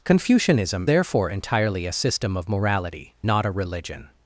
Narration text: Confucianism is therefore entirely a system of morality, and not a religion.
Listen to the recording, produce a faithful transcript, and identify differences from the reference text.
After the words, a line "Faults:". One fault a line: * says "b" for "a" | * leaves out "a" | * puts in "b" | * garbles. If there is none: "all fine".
Confucianism therefore entirely a system of morality, not a religion.
Faults:
* leaves out "is"
* leaves out "and"